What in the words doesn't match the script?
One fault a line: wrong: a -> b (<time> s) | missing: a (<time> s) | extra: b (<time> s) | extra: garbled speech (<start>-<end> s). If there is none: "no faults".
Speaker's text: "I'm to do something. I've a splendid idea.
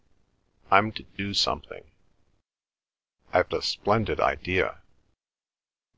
no faults